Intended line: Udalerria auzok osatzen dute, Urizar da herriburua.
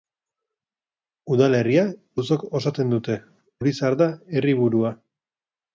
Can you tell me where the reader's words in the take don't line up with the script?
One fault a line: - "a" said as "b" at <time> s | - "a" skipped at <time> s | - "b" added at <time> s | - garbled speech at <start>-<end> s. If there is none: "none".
none